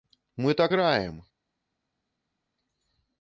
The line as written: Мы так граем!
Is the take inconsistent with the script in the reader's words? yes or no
no